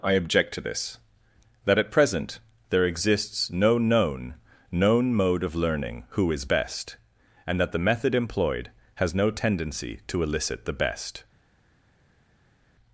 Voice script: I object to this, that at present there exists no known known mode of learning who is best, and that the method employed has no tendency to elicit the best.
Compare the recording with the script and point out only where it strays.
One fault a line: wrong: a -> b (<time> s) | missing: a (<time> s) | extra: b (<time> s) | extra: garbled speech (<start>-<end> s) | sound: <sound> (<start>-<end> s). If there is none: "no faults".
no faults